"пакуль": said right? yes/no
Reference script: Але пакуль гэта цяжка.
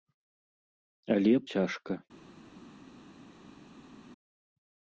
no